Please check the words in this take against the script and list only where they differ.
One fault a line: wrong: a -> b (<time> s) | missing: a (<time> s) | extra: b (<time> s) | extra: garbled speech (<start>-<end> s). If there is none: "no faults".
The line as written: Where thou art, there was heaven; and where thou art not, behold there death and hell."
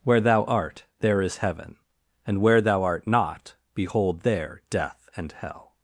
wrong: was -> is (1.2 s)